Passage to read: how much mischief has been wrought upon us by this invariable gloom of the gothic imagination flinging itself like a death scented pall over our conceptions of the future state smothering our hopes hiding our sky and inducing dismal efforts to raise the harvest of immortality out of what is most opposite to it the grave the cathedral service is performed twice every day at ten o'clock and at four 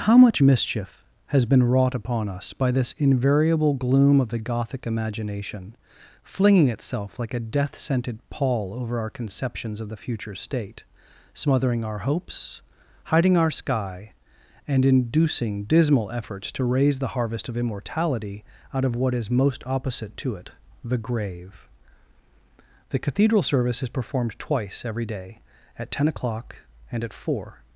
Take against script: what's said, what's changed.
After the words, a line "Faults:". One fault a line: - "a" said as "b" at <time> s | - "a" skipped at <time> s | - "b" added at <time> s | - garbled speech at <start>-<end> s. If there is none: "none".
how much mischief has been wrought upon us by this invariable gloom of the gothic imagination flinging itself like a death scented pall over our conceptions of the future state smothering our hopes hiding our sky and inducing dismal efforts to raise the harvest of immortality out of what is most opposite to it the grave the cathedral service is performed twice every day at ten o'clock and at four
Faults:
none